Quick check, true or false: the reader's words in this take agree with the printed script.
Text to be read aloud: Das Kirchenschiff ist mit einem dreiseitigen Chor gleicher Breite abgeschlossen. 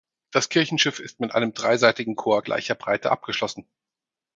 true